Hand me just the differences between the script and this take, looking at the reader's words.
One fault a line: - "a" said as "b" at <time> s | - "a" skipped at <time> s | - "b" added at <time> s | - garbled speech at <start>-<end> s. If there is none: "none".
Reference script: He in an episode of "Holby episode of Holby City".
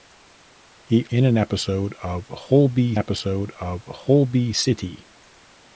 none